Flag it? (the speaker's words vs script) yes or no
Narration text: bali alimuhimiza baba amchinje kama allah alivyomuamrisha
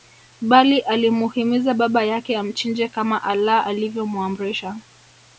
yes